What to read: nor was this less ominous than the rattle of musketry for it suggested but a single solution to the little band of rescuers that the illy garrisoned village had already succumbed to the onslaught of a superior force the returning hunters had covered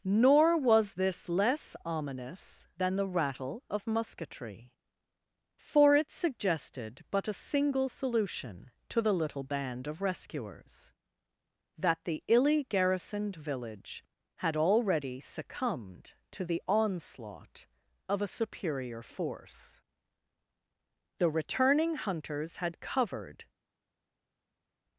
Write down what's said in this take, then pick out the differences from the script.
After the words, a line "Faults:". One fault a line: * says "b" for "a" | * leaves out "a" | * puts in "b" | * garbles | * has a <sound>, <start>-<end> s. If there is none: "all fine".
nor was this less ominous than the rattle of musketry for it suggested but a single solution to the little band of rescuers that the illy garrisoned village had already succumbed to the onslaught of a superior force the returning hunters had covered
Faults:
all fine